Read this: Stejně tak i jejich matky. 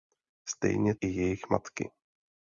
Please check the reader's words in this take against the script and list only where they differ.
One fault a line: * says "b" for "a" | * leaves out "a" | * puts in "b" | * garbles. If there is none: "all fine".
* leaves out "tak"